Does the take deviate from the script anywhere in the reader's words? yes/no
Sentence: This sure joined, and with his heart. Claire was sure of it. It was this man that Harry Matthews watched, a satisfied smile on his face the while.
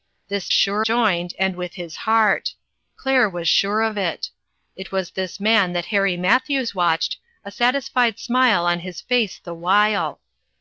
no